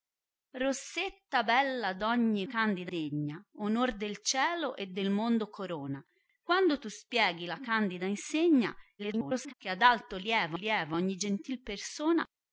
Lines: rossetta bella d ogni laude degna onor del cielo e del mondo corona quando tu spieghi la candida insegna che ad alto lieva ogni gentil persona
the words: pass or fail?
fail